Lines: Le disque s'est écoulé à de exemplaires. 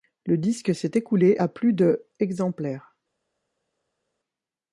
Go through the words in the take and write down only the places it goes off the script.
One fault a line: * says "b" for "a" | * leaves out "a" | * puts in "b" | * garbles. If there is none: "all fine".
* puts in "plus"